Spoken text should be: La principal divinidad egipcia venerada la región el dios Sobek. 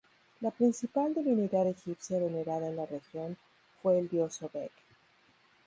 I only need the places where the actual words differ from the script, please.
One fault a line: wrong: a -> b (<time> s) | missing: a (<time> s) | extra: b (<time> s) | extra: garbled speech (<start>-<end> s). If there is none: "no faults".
extra: en (2.7 s)
extra: fue (3.8 s)